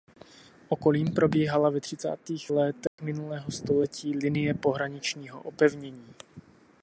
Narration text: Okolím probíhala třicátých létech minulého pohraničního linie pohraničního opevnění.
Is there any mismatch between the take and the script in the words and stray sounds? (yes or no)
yes